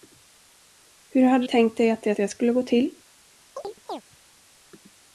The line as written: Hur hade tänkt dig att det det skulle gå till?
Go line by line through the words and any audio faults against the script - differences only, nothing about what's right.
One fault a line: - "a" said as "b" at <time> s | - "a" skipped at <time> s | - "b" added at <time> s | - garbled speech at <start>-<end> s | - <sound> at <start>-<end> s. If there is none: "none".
- chirp at 3.6-4.0 s